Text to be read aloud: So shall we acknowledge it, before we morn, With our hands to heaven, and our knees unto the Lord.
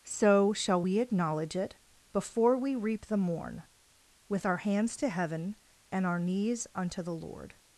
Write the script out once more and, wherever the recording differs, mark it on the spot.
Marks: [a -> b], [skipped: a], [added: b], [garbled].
So shall we acknowledge it, before we [added: reap the] morn, With our hands to heaven, and our knees unto the Lord.